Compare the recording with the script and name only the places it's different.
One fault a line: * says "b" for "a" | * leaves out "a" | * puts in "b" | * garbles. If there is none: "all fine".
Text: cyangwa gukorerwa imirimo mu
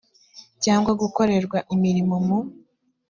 all fine